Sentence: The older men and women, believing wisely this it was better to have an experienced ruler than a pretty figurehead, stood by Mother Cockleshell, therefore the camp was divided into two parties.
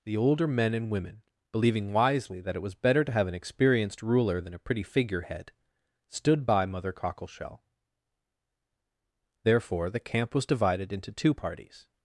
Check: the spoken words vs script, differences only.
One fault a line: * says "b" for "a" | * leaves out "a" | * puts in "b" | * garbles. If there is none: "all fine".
* says "that" for "this"